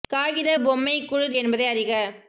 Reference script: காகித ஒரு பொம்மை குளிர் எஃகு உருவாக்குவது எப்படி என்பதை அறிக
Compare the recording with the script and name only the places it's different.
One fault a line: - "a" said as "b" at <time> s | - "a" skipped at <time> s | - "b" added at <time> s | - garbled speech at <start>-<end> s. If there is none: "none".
- "ஒரு" skipped at 0.5 s
- "எஃகு உருவாக்குவது எப்படி" skipped at 1.4 s